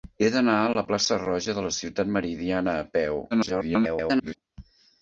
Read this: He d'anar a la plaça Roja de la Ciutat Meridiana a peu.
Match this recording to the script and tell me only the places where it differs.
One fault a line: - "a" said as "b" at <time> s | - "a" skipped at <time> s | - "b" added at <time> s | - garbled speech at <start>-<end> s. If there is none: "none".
- garbled speech at 3.3-4.4 s